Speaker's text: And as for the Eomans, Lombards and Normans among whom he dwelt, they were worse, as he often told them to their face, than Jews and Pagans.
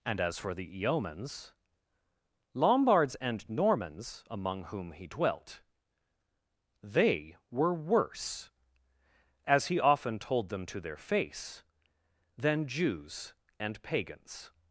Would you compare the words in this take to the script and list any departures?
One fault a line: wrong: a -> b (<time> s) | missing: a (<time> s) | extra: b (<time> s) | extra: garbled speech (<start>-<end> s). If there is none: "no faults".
no faults